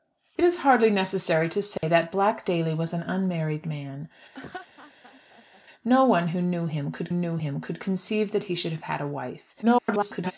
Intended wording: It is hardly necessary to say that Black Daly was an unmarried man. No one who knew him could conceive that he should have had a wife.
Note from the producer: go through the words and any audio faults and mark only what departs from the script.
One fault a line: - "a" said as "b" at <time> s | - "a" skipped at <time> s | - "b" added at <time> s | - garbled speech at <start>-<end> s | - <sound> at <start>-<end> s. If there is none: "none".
- dropout at 1.8-1.8 s
- laugh at 4.3-5.6 s
- "knew him could" added at 7.1 s
- garbled speech at 9.6-10.3 s